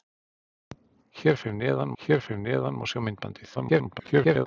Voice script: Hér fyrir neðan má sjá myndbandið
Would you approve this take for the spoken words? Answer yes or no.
no